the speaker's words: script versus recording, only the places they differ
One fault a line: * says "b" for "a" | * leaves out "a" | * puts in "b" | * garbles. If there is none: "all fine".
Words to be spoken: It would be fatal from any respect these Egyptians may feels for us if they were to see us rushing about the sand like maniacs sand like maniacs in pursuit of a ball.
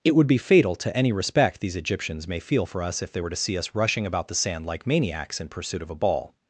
* says "to" for "from"
* says "feel" for "feels"
* leaves out "sand like maniacs"